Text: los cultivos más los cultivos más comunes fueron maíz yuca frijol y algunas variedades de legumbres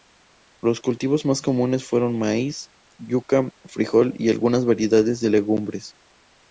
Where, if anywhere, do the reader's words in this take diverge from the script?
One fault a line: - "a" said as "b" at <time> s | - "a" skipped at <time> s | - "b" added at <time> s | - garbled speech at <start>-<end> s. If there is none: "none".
- "los cultivos más" skipped at 1.4 s